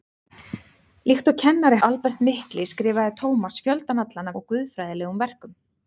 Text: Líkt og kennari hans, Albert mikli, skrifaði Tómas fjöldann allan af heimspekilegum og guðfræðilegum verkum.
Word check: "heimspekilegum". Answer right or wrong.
wrong